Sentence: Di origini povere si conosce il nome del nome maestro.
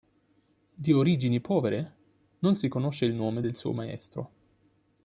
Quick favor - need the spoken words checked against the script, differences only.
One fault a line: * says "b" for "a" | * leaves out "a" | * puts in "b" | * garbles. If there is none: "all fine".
* puts in "non"
* says "suo" for "nome"